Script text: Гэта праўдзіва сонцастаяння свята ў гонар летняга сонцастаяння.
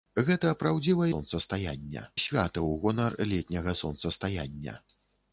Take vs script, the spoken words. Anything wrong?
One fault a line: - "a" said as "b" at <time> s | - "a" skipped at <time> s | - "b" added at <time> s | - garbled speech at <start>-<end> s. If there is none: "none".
none